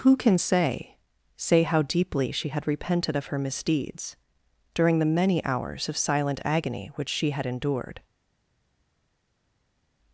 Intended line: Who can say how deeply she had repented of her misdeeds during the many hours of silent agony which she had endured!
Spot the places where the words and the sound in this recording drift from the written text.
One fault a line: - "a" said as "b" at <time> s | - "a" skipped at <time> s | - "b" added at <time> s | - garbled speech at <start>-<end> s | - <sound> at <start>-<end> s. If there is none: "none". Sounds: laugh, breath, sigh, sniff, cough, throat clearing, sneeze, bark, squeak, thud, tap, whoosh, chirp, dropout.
- "say" added at 1.4 s